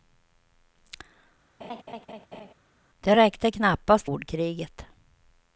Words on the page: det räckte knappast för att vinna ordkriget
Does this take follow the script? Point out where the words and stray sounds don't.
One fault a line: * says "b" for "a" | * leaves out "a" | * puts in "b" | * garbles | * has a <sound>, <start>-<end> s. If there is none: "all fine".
* has a laugh, 1.6-2.5 s
* leaves out "för att vinna"